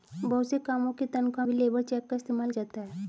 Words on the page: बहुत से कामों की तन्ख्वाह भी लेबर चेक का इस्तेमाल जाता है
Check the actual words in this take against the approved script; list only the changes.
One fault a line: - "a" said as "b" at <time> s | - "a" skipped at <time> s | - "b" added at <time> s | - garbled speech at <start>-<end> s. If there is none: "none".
none